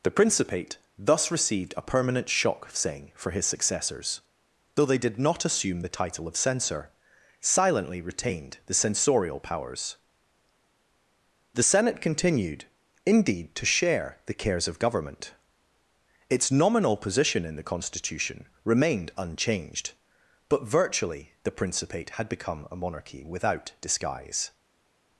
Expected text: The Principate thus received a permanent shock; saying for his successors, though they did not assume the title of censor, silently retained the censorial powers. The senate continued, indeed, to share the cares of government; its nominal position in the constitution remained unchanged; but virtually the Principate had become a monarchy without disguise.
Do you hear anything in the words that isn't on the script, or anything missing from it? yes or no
no